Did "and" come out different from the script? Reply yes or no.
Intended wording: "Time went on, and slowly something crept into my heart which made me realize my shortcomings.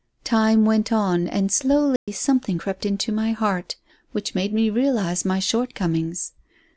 no